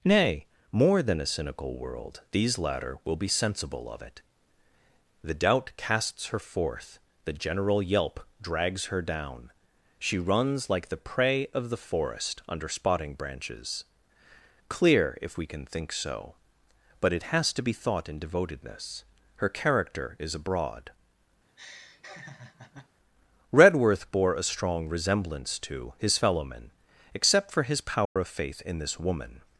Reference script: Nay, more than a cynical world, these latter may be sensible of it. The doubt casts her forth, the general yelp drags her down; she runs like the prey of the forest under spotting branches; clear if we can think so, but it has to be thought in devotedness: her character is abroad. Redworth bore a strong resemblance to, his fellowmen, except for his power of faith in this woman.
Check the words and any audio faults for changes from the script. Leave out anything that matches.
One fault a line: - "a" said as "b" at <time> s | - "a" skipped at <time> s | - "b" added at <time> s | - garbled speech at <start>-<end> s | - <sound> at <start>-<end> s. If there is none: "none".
- "may" said as "will" at 3.0 s
- laugh at 21.5-22.9 s
- dropout at 28.1-28.2 s